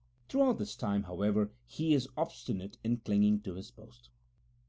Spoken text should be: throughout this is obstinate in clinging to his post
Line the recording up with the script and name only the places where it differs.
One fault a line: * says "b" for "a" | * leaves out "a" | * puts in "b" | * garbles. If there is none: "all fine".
* puts in "time however he"